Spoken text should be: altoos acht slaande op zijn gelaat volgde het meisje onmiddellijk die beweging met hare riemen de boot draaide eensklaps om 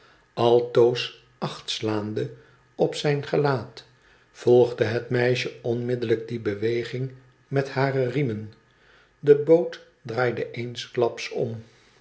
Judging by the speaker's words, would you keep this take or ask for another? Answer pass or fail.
pass